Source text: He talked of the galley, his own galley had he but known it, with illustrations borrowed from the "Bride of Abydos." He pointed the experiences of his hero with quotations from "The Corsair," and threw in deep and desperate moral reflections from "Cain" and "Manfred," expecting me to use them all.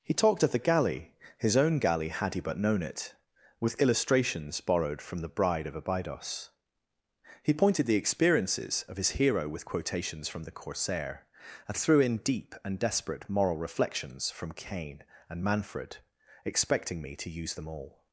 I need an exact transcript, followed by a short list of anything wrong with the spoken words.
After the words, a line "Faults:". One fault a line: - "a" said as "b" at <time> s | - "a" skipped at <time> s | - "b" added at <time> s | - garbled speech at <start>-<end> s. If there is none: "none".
He talked of the galley, his own galley had he but known it, with illustrations borrowed from the "Bride of Abydos." He pointed the experiences of his hero with quotations from "The Corsair," and threw in deep and desperate moral reflections from "Cain" and "Manfred," expecting me to use them all.
Faults:
none